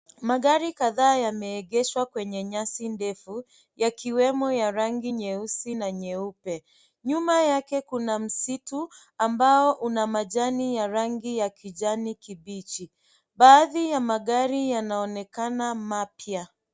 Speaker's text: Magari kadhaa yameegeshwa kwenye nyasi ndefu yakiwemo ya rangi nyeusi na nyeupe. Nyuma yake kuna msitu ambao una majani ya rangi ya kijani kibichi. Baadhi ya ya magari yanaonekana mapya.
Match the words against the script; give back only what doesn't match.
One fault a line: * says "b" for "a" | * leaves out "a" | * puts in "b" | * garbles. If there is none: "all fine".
* leaves out "ya"